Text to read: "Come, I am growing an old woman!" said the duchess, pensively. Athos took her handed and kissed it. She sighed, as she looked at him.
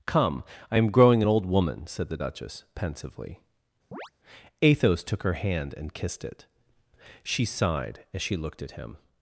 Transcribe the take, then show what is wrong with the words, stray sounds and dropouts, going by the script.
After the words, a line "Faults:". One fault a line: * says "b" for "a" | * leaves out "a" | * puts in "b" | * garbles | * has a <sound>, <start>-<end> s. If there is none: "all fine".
"Come, I am growing an old woman!" said the duchess, pensively. Athos took her hand and kissed it. She sighed, as she looked at him.
Faults:
* has a chirp, 3.9-4.1 s
* says "hand" for "handed"